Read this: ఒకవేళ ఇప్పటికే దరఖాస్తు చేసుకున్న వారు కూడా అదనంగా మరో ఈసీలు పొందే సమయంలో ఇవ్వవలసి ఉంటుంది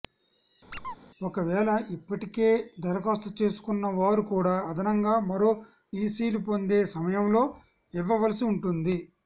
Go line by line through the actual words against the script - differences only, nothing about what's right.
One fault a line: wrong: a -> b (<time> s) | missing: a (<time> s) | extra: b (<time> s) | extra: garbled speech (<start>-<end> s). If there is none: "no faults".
no faults